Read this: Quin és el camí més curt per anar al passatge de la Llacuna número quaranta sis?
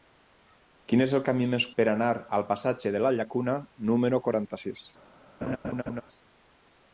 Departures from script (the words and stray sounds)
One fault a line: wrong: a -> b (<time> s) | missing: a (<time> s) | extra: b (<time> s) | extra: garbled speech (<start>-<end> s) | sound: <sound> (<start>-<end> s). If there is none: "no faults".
missing: curt (1.7 s)
sound: laugh (5.4-6.0 s)